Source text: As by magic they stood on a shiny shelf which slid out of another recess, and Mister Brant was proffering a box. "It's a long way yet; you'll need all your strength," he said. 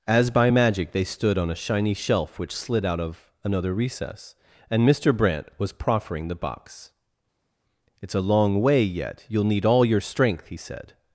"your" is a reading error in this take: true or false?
false